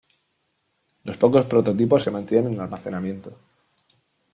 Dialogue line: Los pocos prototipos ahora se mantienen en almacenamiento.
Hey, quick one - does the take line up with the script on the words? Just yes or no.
no